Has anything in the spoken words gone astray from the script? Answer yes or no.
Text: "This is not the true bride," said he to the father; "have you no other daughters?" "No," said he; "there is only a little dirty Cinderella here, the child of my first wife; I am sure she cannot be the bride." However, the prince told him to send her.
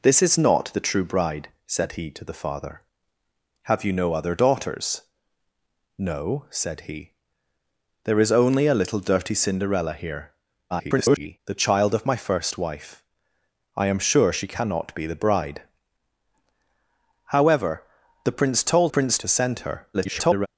yes